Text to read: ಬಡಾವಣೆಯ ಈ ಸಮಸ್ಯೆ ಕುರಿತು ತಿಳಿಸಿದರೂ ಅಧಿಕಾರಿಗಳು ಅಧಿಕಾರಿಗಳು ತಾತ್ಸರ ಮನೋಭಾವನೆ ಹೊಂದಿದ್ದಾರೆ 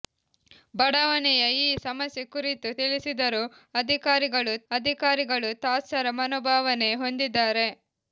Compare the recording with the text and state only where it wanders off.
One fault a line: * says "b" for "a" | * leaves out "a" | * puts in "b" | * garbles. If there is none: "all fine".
all fine